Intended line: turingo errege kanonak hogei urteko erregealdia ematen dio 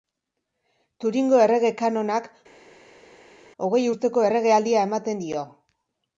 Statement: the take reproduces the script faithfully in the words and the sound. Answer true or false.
true